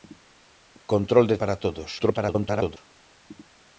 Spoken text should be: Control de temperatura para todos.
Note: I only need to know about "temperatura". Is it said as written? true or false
false